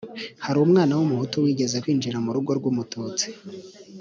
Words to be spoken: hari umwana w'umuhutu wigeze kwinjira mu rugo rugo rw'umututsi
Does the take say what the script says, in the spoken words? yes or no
no